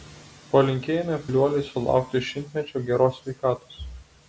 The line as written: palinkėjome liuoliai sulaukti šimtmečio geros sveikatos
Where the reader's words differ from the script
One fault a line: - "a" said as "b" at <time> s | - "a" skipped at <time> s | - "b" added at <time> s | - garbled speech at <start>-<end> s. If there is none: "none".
none